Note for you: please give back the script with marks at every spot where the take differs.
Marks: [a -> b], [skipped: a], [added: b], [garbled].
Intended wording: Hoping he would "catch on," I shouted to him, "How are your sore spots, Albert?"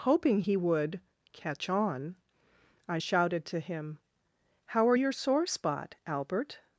Hoping he would "catch on," I shouted to him, "How are your sore [spots, -> spot] Albert?"